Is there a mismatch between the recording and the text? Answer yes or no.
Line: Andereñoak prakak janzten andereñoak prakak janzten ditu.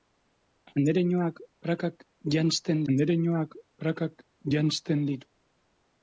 no